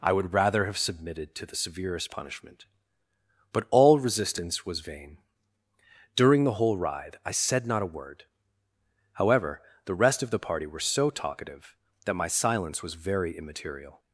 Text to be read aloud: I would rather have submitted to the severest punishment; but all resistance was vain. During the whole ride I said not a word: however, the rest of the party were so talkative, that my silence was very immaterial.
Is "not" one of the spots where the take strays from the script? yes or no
no